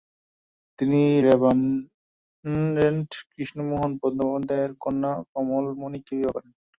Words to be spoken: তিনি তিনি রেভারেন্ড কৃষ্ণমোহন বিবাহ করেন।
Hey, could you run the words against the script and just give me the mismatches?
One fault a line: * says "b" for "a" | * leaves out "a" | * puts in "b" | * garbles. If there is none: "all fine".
* leaves out "তিনি"
* puts in "বন্দ্যোপাধ্যায়ের কন্যা কমলমণিকে"